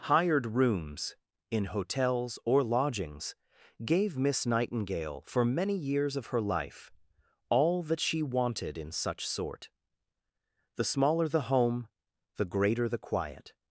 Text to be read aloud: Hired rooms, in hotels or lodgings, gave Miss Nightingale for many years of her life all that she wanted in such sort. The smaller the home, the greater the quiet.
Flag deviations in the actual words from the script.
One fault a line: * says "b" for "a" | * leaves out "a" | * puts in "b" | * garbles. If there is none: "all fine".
all fine